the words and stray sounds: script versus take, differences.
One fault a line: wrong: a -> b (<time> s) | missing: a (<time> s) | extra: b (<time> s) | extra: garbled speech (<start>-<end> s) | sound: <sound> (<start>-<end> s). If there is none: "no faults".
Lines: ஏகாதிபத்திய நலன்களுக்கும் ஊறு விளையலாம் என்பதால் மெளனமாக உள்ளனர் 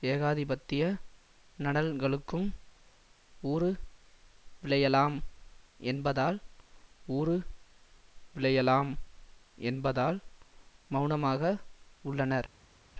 extra: ஊறு விளையலாம் என்பதால் (7.1 s)